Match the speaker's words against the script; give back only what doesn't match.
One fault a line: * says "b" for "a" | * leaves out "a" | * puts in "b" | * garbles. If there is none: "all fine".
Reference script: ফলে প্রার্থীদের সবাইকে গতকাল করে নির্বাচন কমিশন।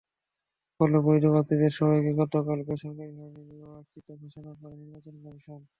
* puts in "বৈধ"
* puts in "বেসরকারিভাবে নির্বাচিত ঘোষণা"